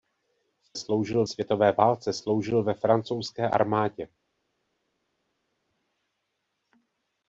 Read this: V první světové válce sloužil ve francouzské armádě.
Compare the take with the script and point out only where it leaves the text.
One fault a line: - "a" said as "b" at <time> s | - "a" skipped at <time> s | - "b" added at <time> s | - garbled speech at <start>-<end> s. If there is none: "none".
- "první" said as "sloužil" at 0.8 s